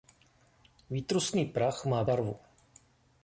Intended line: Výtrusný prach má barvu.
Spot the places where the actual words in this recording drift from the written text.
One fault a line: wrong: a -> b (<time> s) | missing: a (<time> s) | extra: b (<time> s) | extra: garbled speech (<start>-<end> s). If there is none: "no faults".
no faults